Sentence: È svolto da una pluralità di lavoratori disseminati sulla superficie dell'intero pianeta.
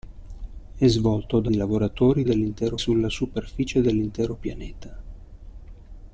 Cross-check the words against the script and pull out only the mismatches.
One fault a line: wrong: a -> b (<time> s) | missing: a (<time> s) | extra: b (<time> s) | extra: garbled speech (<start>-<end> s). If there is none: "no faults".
missing: una pluralità (1.5 s)
wrong: disseminati -> dell'intero (2.2 s)